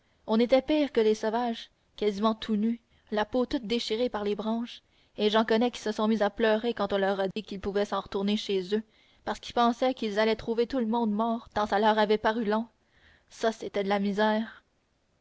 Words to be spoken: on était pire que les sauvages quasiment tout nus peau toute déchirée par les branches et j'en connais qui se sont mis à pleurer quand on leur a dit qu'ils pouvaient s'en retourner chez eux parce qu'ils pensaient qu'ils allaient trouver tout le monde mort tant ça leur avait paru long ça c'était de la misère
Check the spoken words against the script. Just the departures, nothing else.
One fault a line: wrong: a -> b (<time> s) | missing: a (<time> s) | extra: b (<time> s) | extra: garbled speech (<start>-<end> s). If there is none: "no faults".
extra: la (3.1 s)